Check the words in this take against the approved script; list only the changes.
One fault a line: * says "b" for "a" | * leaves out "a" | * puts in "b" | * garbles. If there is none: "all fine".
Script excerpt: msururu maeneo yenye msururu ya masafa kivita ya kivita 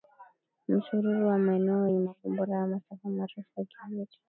* puts in "wa"
* says "makombora" for "msururu"
* says "marefu" for "kivita"